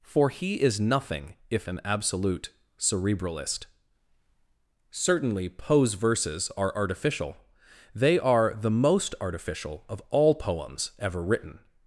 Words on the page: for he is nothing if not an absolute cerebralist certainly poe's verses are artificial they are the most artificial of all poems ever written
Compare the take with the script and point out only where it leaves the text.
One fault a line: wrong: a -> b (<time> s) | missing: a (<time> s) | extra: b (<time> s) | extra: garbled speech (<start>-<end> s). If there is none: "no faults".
missing: not (1.7 s)